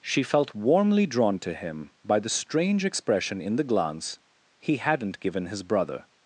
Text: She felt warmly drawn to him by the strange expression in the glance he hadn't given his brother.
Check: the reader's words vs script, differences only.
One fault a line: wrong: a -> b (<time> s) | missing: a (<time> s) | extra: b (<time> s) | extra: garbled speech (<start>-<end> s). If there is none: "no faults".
no faults